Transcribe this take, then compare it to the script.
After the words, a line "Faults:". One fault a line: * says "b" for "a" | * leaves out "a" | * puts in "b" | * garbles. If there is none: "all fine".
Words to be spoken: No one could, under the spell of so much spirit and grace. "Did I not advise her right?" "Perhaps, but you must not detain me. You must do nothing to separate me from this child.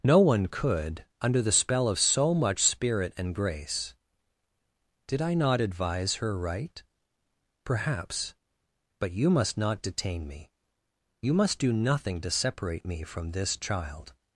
No one could, under the spell of so much spirit and grace. "Did I not advise her right?" "Perhaps, but you must not detain me. You must do nothing to separate me from this child.
Faults:
all fine